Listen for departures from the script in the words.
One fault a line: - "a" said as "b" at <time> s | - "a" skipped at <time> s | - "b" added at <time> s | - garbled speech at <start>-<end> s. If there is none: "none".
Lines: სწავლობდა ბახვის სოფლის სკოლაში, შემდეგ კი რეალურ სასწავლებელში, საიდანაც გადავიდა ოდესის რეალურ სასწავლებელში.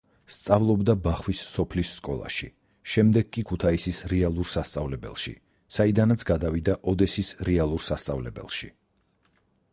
- "ქუთაისის" added at 3.5 s